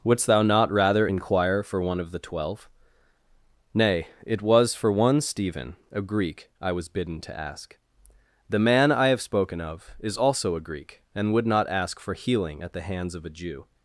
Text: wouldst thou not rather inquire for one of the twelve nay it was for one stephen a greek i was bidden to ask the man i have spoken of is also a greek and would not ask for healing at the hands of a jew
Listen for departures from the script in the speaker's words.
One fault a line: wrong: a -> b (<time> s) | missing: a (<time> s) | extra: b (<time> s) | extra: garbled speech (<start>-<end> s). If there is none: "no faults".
no faults